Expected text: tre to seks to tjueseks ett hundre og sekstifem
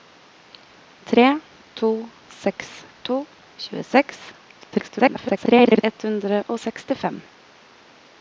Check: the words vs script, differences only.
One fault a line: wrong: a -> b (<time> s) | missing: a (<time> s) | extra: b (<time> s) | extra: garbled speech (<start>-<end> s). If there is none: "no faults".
extra: garbled speech (4.6-5.8 s)